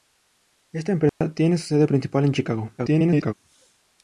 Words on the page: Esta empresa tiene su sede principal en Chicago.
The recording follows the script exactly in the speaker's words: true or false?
false